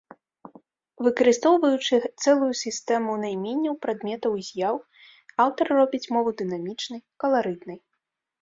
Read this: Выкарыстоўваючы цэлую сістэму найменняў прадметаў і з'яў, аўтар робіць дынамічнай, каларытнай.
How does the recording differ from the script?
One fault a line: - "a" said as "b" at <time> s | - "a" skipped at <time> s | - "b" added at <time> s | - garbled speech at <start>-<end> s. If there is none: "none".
- "мову" added at 6.2 s